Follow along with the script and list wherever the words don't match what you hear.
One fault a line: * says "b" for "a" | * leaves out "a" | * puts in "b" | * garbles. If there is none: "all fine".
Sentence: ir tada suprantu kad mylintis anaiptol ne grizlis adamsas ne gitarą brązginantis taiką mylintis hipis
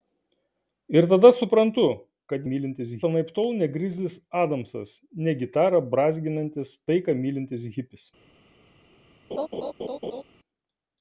all fine